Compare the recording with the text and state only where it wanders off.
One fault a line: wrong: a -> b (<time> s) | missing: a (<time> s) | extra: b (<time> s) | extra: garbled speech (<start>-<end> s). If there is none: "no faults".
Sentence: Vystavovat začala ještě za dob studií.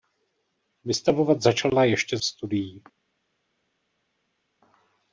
missing: za dob (2.2 s)